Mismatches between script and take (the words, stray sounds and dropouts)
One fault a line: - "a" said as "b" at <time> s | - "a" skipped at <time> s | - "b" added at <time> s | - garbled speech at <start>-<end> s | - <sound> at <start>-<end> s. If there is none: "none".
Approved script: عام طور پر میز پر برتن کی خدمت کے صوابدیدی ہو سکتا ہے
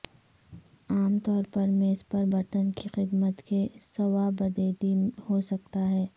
none